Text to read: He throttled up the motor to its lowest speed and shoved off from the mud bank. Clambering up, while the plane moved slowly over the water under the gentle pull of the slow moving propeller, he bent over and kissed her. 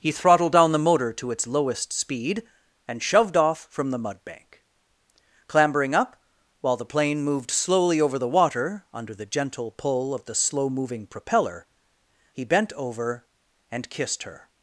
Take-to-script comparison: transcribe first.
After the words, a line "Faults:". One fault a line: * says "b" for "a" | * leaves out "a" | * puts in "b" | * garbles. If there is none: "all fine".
He throttled down the motor to its lowest speed and shoved off from the mud bank. Clambering up, while the plane moved slowly over the water under the gentle pull of the slow moving propeller, he bent over and kissed her.
Faults:
* says "down" for "up"